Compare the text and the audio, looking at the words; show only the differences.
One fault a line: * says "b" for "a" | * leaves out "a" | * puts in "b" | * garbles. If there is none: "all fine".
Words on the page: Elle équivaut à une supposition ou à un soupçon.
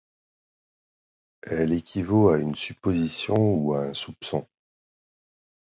all fine